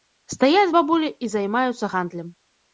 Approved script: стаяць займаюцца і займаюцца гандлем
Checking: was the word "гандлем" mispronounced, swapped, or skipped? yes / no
no